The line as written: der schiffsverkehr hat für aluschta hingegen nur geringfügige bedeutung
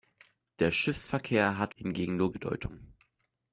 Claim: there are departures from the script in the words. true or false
true